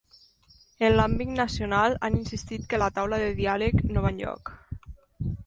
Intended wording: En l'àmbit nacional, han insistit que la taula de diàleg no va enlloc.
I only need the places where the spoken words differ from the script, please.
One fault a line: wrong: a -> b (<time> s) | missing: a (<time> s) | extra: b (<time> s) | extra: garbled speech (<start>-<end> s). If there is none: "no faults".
no faults